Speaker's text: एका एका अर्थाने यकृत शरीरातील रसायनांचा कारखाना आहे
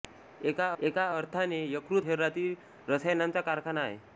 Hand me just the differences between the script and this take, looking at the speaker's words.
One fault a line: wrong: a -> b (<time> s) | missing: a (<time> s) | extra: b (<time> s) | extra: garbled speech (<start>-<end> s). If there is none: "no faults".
no faults